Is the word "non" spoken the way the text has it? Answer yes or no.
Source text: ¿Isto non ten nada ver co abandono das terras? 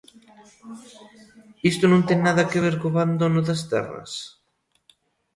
yes